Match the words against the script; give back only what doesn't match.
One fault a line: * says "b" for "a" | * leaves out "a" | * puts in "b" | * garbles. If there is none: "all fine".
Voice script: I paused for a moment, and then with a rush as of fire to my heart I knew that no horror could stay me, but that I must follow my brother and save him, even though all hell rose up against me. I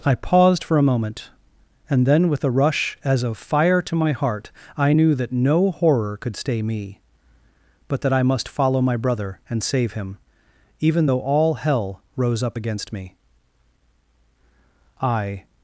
all fine